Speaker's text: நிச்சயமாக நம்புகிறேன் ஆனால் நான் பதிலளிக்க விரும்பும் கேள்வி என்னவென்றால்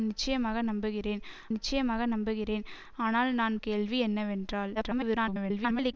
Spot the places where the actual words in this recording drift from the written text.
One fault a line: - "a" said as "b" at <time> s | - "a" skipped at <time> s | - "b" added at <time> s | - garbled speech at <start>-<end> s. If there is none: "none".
- "நிச்சயமாக நம்புகிறேன்" added at 1.5 s
- "பதிலளிக்க விரும்பும்" skipped at 3.6 s
- garbled speech at 4.7-5.9 s